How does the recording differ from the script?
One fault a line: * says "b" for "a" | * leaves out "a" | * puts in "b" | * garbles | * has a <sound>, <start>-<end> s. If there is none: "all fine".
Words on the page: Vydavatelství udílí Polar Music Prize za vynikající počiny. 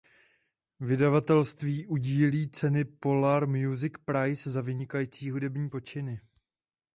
* puts in "ceny"
* puts in "hudební"